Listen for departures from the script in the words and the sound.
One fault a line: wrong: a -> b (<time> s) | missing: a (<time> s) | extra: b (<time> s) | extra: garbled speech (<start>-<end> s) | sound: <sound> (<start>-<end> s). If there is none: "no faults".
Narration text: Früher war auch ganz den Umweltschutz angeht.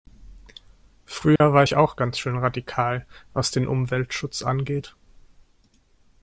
sound: dropout (1.4-1.4 s)
extra: ich (1.6 s)
extra: schön radikal was (2.2 s)